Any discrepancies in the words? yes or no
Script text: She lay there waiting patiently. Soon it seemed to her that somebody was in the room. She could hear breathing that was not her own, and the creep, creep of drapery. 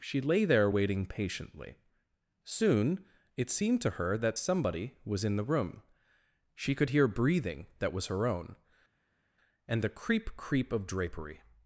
yes